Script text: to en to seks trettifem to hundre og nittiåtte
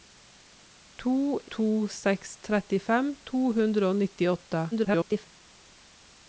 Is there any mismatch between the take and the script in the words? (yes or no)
yes